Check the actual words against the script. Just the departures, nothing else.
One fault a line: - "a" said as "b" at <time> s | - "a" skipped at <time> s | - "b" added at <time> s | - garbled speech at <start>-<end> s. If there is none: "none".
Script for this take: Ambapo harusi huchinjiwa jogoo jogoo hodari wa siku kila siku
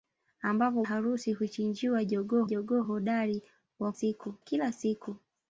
none